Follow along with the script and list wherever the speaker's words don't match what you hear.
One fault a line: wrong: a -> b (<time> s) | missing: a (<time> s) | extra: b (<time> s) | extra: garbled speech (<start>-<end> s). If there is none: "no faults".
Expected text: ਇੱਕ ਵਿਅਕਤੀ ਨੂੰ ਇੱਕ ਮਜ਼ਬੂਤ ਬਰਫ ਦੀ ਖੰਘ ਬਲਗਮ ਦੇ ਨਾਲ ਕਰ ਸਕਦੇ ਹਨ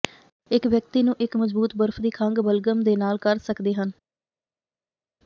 no faults